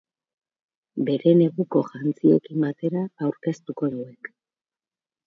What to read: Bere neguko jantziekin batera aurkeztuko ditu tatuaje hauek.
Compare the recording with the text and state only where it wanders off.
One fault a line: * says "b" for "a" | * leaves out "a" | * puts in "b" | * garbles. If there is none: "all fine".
* leaves out "ditu tatuaje"